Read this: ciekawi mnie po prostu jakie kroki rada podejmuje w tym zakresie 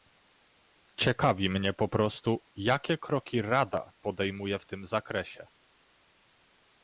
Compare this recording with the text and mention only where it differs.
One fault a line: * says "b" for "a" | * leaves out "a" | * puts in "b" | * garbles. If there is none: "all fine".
all fine